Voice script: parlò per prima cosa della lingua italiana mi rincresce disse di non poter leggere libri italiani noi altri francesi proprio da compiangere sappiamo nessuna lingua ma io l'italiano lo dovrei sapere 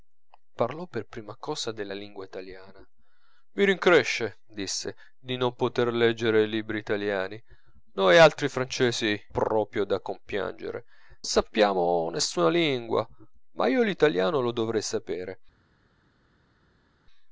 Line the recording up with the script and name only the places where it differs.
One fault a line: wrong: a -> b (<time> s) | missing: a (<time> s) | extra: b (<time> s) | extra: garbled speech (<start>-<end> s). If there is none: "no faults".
no faults